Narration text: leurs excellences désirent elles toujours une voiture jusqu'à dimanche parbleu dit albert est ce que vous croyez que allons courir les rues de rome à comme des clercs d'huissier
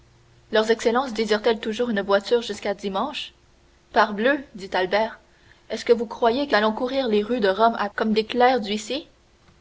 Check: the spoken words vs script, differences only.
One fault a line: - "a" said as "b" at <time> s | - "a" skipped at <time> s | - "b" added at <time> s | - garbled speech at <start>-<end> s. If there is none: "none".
none